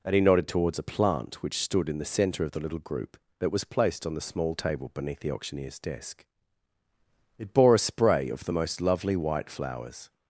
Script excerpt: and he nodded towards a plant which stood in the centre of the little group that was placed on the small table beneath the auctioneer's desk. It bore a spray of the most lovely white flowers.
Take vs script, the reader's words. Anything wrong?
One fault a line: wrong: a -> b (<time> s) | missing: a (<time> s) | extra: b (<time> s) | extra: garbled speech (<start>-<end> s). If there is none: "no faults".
no faults